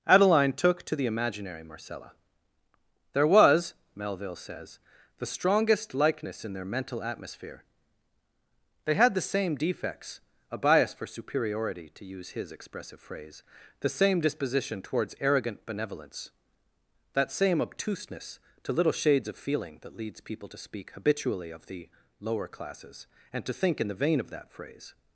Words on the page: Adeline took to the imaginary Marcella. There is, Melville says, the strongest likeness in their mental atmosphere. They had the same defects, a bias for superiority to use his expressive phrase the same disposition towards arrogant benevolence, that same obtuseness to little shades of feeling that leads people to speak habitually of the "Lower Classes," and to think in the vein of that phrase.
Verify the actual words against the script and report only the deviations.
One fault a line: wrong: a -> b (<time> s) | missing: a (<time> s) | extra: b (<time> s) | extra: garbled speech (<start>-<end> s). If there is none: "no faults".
wrong: is -> was (3.3 s)